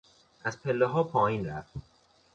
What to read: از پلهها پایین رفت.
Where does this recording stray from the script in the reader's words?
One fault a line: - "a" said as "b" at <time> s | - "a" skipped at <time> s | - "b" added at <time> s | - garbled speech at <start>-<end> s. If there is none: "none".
none